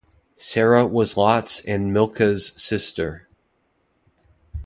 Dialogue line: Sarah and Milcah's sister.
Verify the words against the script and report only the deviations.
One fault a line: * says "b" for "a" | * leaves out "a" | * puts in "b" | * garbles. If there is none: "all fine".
* puts in "was Lot's"